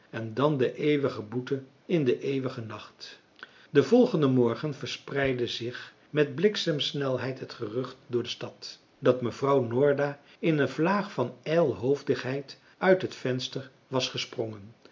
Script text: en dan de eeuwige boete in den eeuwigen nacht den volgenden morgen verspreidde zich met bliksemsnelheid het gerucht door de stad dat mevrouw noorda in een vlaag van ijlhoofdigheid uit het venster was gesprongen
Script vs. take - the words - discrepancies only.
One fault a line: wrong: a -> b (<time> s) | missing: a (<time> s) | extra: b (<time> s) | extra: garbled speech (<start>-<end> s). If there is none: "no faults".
no faults